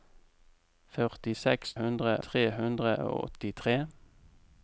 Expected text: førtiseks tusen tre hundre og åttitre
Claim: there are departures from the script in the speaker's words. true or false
true